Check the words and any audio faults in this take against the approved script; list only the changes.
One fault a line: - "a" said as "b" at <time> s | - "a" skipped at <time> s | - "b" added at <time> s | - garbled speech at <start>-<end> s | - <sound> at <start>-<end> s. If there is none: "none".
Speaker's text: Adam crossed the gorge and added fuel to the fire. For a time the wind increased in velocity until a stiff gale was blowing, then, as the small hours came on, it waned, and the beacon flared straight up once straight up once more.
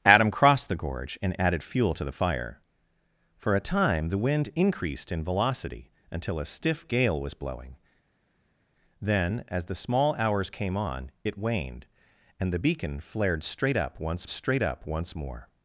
none